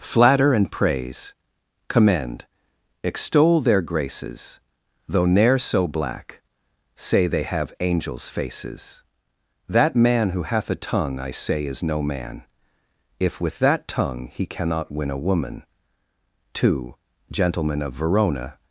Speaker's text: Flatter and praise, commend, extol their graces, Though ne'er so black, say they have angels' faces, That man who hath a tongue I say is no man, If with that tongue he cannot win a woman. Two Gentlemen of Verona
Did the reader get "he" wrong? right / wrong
right